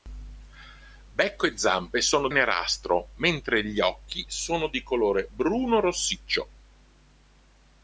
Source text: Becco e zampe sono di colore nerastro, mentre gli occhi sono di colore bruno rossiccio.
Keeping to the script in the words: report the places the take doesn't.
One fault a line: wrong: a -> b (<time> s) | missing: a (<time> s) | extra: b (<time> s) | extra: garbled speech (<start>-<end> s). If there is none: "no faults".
missing: di colore (2.3 s)